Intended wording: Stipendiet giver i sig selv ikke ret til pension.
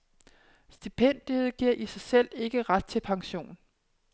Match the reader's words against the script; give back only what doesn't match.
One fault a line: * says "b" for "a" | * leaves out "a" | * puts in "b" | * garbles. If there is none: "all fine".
all fine